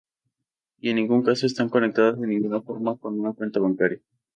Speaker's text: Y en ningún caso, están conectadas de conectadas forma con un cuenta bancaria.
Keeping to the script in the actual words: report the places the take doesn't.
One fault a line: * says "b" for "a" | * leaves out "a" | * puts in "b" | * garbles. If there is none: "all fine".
* says "ninguna" for "conectadas"
* says "una" for "un"